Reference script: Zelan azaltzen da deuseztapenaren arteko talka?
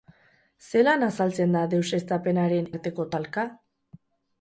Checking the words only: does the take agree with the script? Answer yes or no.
yes